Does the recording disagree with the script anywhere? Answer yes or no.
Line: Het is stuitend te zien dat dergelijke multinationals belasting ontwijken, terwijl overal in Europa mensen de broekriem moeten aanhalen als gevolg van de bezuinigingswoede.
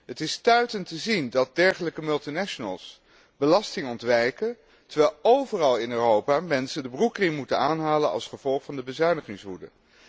no